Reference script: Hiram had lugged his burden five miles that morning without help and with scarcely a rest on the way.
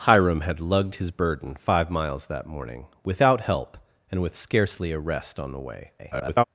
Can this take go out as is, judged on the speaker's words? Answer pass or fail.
fail